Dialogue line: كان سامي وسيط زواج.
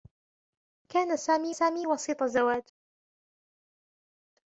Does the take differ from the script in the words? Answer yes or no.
yes